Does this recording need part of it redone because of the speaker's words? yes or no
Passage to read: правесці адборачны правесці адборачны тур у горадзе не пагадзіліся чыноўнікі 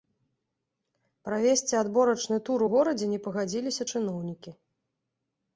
yes